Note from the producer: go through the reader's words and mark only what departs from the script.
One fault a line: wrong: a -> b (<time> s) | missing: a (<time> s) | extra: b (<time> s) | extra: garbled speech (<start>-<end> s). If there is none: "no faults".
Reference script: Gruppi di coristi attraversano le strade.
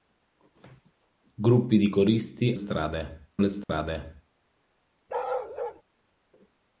wrong: attraversano -> strade (2.5 s)